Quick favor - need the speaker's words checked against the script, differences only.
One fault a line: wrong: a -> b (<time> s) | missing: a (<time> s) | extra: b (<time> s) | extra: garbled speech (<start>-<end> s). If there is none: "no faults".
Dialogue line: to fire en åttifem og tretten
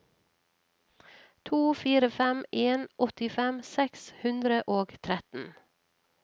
extra: fem (2.1 s)
extra: seks hundre (3.7 s)